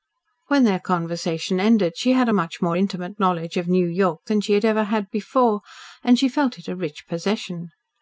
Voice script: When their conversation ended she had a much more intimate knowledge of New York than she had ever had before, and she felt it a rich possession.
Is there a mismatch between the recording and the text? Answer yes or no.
no